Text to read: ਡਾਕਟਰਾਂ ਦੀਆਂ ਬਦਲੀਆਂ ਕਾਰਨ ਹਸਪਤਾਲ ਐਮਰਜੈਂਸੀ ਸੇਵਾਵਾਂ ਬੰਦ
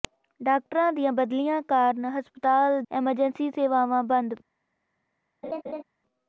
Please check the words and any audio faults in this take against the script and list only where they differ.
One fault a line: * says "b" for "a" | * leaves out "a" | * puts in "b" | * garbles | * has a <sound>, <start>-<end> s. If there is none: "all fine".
* has a laugh, 5.4-5.8 s